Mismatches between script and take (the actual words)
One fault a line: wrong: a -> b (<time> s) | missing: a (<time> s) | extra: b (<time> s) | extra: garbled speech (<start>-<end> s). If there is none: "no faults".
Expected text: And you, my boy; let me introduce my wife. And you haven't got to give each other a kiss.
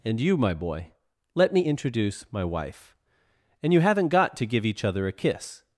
no faults